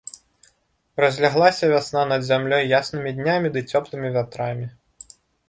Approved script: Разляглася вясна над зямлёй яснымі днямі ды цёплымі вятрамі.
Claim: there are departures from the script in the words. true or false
false